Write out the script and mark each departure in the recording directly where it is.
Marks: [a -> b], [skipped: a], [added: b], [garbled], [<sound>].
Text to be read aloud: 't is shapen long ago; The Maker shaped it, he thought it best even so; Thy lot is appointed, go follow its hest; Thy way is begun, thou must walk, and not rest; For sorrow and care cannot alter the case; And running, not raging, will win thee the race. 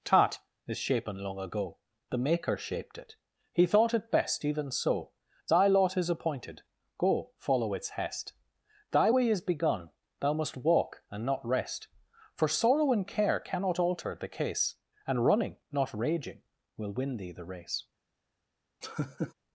['t -> tat] is shapen long ago; The Maker shaped it, he thought it best even so; Thy lot is appointed, go follow its hest; Thy way is begun, thou must walk, and not rest; For sorrow and care cannot alter the case; And running, not raging, will win thee the race. [laugh]